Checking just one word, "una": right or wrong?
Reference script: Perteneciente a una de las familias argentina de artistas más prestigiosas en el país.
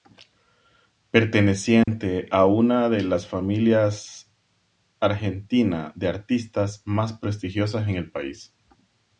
right